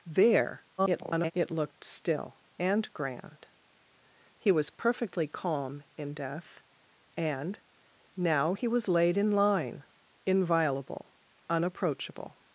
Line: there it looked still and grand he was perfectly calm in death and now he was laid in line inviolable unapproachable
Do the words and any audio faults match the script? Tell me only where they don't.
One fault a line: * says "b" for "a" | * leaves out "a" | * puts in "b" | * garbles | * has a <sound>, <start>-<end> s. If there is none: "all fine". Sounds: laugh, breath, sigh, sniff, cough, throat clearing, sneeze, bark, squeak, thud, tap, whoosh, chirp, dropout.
* garbles